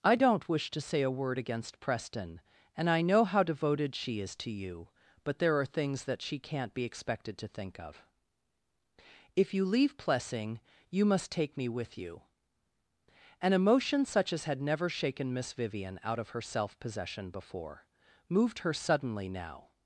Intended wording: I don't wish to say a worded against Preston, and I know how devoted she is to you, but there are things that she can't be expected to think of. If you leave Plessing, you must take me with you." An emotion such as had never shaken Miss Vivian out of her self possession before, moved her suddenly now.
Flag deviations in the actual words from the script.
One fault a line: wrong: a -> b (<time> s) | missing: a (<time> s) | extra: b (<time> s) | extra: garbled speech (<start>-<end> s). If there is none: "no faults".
wrong: worded -> word (1.1 s)